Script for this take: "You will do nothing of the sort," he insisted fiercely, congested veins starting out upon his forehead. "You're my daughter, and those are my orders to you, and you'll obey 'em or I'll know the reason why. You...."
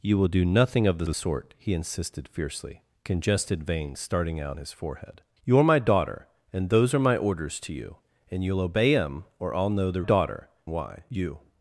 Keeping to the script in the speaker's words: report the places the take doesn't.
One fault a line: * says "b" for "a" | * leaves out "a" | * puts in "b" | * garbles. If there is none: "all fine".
* puts in "the"
* leaves out "upon"
* says "daughter" for "reason"